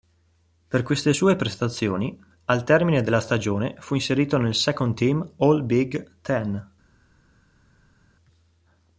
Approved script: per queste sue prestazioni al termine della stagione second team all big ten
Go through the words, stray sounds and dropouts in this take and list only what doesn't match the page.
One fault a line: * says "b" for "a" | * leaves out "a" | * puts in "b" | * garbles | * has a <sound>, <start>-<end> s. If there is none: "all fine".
* puts in "fu inserito nel"